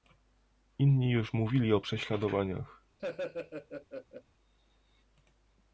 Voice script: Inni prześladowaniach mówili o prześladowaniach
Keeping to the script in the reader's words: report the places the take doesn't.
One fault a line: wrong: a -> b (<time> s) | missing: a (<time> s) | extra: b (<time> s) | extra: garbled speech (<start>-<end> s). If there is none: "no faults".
wrong: prześladowaniach -> już (1.1 s)